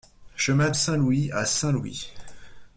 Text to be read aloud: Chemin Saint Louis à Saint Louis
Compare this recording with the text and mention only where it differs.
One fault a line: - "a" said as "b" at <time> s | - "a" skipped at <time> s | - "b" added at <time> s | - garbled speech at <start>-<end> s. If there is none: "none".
none